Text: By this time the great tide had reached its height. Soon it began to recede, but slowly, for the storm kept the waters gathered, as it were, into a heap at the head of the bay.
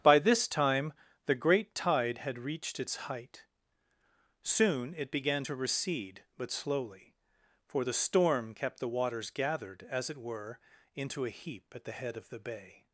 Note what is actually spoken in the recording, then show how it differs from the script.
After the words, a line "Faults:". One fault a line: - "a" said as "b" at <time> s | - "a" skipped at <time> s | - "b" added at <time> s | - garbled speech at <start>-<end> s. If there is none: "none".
By this time the great tide had reached its height. Soon it began to recede, but slowly, for the storm kept the waters gathered, as it were, into a heap at the head of the bay.
Faults:
none